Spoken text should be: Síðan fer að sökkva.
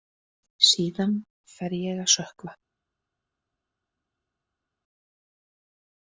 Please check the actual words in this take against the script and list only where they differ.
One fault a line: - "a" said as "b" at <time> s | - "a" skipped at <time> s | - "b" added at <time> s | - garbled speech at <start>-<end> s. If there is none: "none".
- "ég" added at 1.8 s